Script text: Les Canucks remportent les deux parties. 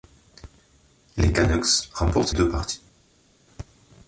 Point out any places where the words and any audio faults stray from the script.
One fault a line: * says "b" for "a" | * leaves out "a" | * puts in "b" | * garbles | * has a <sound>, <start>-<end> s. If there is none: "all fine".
* leaves out "les"